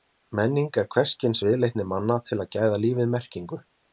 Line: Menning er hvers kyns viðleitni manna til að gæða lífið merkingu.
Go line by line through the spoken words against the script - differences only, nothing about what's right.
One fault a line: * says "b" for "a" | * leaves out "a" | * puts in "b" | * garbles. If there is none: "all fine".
all fine